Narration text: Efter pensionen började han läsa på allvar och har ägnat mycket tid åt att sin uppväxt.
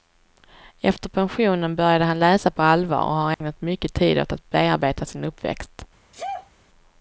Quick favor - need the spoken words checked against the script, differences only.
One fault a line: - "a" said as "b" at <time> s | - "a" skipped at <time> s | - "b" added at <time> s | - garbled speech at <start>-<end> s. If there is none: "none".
- "bearbeta" added at 4.5 s